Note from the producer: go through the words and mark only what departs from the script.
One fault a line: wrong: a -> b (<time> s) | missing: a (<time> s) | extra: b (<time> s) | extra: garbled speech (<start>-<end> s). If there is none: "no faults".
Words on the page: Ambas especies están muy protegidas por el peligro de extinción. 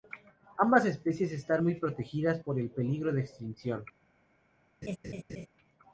no faults